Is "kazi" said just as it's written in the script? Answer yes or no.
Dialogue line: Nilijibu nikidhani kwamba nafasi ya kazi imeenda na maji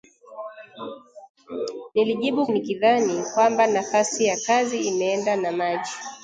yes